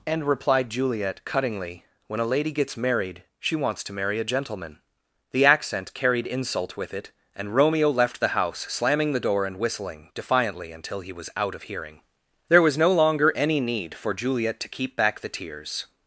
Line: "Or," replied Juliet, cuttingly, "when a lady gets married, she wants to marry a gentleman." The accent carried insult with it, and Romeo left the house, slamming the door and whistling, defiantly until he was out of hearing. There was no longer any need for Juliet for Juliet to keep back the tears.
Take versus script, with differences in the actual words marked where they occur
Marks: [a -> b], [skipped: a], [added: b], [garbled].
["Or," -> And] replied Juliet, cuttingly, "when a lady gets married, she wants to marry a gentleman." The accent carried insult with it, and Romeo left the house, slamming the door and whistling, defiantly until he was out of hearing. There was no longer any need for Juliet [skipped: for Juliet] to keep back the tears.